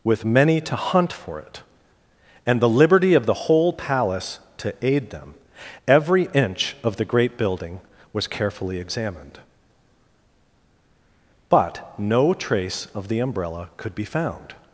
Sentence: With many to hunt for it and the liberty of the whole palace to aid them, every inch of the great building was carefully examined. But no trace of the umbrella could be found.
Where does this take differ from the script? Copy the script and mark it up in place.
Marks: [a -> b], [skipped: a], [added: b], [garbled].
With many to hunt for it and the liberty of the whole palace to aid them, every inch of the great building was carefully examined. But no trace of the umbrella could be found.